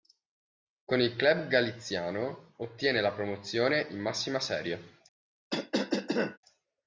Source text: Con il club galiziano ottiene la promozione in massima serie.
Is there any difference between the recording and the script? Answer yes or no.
no